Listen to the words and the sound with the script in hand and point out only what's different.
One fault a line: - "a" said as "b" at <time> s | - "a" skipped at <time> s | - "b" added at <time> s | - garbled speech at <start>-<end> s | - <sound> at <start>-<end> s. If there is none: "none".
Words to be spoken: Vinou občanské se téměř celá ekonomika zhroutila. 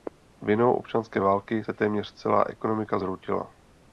- "války" added at 1.2 s